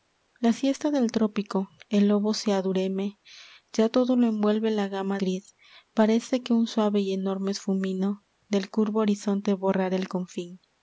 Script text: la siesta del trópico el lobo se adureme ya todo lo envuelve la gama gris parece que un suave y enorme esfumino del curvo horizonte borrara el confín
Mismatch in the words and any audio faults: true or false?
false